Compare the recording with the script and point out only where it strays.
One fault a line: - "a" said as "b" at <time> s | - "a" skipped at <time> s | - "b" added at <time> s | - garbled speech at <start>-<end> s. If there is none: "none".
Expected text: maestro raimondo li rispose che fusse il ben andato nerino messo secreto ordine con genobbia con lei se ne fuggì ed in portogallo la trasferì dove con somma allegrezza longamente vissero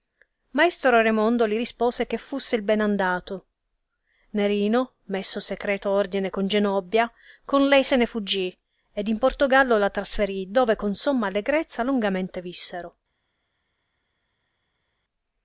none